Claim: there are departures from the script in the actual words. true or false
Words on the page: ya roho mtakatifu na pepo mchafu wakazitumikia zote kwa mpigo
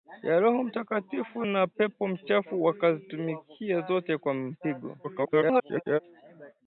true